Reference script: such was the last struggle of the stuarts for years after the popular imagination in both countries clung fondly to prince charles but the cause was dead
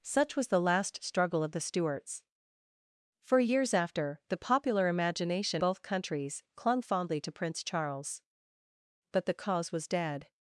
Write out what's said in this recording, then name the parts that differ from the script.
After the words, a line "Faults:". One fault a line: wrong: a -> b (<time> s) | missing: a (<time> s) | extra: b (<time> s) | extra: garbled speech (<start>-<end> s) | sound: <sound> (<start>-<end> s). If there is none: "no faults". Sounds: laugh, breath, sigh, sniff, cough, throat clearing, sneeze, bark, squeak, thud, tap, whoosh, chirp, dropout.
such was the last struggle of the stuarts for years after the popular imagination both countries clung fondly to prince charles but the cause was dead
Faults:
missing: in (5.6 s)